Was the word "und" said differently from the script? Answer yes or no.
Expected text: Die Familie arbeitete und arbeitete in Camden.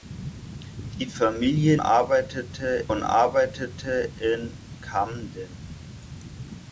no